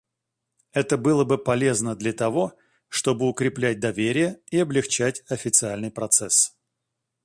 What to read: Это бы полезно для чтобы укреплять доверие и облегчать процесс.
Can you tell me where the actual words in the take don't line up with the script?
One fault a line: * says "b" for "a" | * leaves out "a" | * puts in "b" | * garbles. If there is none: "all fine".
* puts in "было"
* puts in "того"
* puts in "официальный"